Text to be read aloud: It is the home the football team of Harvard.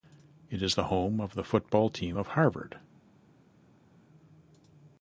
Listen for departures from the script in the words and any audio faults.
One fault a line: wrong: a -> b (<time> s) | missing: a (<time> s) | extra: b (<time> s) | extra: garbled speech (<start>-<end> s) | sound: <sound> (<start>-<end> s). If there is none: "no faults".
extra: of (1.2 s)